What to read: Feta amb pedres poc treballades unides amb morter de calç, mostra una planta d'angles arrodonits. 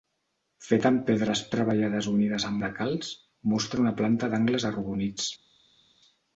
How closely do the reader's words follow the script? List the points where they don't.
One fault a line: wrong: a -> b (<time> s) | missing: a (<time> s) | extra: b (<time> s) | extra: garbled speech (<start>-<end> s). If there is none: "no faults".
missing: poc (1.4 s)
missing: morter (2.6 s)